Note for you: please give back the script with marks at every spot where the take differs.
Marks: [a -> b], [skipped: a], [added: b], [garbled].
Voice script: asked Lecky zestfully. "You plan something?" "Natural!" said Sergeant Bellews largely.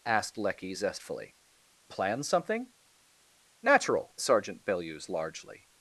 asked Lecky zestfully. [skipped: "You] plan something?" "Natural!" [skipped: said] Sergeant Bellews largely.